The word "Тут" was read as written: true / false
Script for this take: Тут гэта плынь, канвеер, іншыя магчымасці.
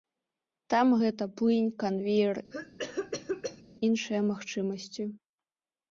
false